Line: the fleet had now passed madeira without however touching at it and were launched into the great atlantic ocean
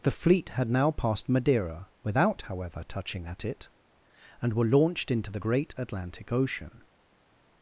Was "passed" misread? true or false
false